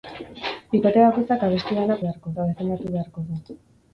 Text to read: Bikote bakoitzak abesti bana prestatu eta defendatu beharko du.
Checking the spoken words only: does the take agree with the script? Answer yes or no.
no